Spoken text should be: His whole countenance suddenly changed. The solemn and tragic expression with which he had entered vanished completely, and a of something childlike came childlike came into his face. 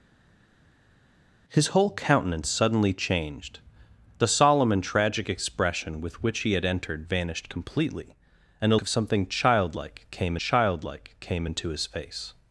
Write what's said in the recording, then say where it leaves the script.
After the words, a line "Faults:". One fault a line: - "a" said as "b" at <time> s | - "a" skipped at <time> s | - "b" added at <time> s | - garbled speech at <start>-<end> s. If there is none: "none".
His whole countenance suddenly changed. The solemn and tragic expression with which he had entered vanished completely, and a of something childlike came childlike came into his face.
Faults:
none